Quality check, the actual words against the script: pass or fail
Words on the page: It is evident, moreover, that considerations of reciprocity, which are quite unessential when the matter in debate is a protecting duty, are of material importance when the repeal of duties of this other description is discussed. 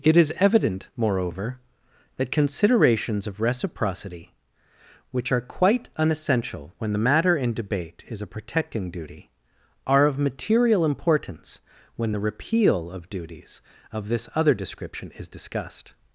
pass